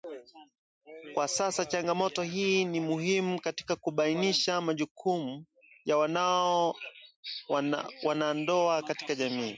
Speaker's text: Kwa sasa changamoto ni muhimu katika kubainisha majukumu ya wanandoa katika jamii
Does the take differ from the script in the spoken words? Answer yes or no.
yes